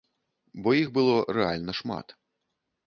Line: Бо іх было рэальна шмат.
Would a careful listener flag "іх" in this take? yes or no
no